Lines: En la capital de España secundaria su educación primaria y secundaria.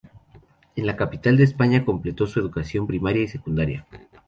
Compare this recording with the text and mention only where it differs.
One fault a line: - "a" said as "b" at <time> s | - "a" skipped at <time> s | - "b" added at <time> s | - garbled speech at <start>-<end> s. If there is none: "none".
- "secundaria" said as "completó" at 1.9 s